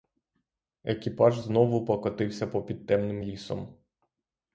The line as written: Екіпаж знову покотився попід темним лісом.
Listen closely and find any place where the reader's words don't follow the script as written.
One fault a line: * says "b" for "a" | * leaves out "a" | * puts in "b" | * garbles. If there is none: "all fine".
all fine